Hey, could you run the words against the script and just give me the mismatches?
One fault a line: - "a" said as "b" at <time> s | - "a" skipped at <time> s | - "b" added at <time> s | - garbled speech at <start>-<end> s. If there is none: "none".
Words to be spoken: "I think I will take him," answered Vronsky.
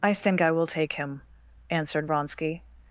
none